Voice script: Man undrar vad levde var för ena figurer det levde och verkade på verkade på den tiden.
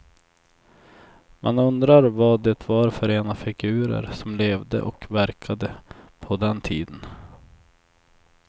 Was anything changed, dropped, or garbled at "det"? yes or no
yes